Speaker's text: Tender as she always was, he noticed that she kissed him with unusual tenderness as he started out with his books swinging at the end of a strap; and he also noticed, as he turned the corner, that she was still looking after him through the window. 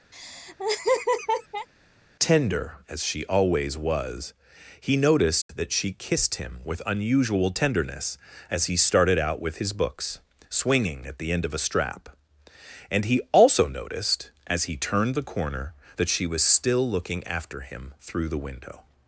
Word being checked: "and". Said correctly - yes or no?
yes